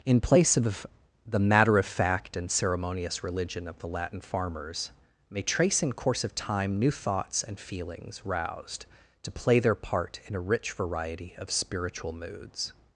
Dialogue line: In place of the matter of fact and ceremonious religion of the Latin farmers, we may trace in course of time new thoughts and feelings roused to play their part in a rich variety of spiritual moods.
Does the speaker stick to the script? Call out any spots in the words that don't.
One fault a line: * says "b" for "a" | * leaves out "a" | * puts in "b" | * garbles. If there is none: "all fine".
* leaves out "we"